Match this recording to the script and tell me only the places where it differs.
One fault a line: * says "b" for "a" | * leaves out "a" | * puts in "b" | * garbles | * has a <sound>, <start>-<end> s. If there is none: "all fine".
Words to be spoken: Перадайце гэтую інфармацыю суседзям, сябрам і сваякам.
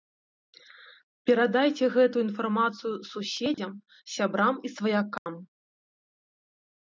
* has a dropout, 3.5-3.6 s
* has a dropout, 5.2-5.3 s